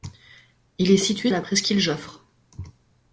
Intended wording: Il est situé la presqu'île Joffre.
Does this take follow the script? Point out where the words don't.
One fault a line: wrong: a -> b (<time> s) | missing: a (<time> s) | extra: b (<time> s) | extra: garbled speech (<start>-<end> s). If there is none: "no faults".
no faults